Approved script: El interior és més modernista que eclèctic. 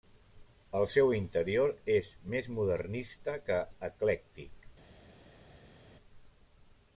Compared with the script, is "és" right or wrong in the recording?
right